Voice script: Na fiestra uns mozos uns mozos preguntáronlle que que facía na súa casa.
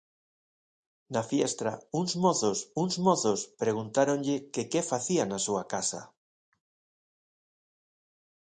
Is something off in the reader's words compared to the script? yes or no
no